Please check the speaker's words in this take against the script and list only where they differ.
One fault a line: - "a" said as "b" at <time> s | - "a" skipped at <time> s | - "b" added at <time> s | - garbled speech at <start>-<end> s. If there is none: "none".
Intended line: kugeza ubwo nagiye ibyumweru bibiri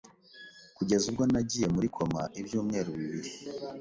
- "muri koma" added at 1.8 s